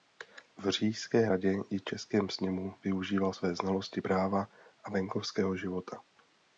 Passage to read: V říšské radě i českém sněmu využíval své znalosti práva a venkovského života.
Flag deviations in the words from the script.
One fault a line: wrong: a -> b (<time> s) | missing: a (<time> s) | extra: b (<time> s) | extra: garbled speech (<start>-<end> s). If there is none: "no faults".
no faults